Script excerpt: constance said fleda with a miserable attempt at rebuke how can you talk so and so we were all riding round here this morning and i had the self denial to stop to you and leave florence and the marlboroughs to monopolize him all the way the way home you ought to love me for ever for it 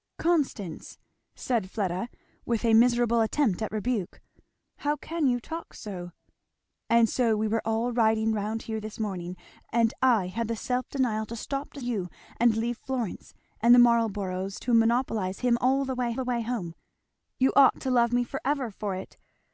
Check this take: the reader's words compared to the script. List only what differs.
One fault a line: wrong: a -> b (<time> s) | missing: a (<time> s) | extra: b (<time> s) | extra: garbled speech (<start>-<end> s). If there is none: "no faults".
no faults